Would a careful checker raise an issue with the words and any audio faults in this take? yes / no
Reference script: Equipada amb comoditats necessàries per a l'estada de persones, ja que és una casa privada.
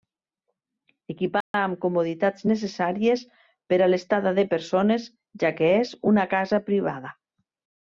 yes